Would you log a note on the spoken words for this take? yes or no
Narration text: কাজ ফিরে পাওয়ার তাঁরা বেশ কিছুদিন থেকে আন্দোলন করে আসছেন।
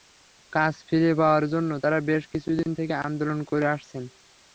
yes